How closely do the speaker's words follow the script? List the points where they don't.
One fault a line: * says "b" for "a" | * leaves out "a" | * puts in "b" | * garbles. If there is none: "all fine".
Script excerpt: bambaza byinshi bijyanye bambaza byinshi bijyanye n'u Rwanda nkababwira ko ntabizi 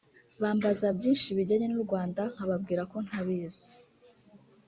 * leaves out "bambaza byinshi bijyanye"